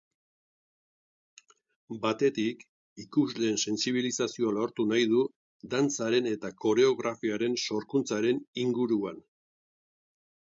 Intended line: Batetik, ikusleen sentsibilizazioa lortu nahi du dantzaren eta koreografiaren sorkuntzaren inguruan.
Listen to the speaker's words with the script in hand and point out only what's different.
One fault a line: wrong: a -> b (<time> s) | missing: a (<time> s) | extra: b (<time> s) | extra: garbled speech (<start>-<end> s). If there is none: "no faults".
no faults